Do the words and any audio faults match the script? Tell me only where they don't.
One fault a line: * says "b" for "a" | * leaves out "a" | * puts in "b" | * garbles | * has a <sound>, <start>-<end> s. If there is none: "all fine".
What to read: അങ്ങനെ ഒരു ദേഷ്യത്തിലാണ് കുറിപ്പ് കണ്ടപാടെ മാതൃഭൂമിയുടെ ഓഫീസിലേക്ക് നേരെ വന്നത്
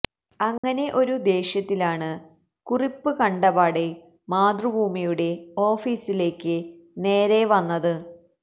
* has a dropout, 0.6-0.6 s